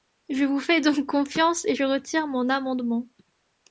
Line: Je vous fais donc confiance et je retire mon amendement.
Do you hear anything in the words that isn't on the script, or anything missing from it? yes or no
no